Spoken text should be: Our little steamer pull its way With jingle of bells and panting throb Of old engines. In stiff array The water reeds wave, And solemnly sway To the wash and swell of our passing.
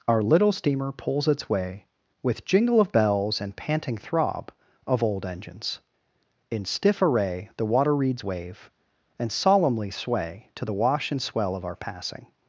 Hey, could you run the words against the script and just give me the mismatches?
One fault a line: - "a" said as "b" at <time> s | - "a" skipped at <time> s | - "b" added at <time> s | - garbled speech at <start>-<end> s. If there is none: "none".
- "pull" said as "pulls" at 0.9 s